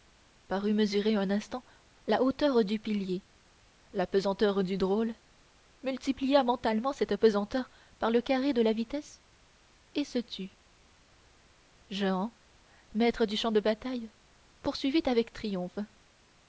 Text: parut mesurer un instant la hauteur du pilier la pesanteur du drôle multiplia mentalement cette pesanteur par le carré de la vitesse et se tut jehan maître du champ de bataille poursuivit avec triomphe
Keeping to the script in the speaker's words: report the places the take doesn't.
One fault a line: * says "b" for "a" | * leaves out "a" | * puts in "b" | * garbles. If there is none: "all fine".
all fine